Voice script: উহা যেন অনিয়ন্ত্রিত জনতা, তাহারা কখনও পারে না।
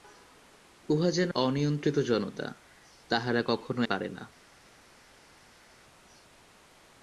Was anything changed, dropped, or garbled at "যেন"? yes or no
no